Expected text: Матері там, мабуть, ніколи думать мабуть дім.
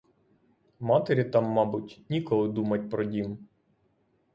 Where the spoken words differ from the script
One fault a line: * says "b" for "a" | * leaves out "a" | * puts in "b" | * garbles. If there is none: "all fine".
* says "про" for "мабуть"